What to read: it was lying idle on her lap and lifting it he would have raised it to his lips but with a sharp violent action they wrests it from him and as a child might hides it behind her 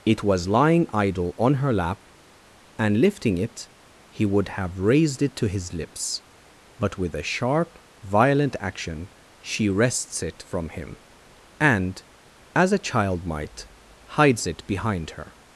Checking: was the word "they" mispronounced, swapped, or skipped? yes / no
yes